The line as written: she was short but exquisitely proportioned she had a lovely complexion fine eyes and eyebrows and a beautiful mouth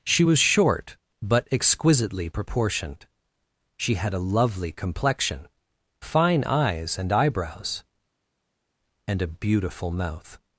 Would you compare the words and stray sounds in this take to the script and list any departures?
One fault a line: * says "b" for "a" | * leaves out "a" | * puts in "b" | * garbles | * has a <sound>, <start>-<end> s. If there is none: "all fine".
all fine